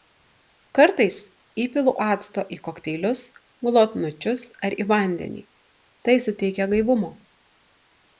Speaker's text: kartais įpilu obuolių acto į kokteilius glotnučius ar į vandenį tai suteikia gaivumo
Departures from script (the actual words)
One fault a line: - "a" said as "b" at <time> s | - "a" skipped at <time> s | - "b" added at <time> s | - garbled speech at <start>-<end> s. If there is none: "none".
- "obuolių" skipped at 1.9 s